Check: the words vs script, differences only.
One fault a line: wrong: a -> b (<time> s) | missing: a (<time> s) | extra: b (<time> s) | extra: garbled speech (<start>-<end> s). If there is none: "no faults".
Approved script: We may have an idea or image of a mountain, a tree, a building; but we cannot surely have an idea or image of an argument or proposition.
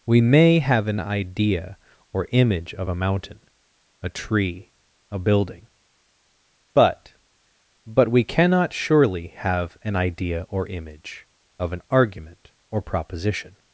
extra: but (7.9 s)